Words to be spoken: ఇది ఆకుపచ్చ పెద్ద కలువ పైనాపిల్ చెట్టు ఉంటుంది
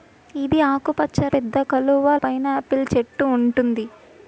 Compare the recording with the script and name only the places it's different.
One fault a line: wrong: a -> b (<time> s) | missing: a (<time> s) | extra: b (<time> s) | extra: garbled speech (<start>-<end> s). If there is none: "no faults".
no faults